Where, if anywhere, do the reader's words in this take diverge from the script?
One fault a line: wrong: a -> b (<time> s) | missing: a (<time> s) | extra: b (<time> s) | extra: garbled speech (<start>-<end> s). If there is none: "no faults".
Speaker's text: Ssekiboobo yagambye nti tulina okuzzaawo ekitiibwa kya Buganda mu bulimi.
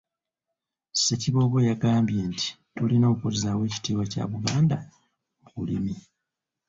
no faults